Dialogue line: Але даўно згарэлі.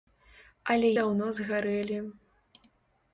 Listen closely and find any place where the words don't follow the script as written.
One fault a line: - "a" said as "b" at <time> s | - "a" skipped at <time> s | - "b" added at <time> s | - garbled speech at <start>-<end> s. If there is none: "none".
none